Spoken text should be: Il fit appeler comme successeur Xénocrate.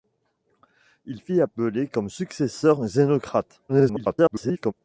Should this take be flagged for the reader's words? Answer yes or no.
yes